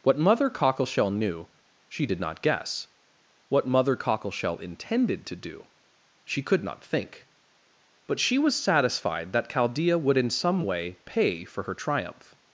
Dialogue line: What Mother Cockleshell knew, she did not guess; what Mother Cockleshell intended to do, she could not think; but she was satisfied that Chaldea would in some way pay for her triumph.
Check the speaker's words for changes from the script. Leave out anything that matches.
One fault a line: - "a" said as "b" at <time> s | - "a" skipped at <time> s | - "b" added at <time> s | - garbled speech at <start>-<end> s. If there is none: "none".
none